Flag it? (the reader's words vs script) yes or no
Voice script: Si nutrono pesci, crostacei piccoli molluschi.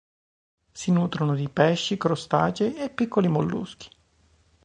yes